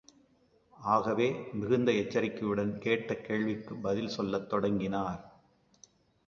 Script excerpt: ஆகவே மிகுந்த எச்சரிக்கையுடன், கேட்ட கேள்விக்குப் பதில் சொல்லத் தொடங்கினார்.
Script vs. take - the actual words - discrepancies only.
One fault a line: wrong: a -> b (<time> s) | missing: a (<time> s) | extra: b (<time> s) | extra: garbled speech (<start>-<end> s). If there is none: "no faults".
no faults